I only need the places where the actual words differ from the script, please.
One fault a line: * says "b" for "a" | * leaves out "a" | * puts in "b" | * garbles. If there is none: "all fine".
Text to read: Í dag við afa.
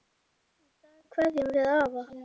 * puts in "kveðjum"